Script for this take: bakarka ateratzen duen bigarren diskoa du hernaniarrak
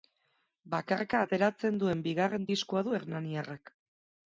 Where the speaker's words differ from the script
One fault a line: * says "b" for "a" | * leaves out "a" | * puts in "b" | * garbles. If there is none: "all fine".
all fine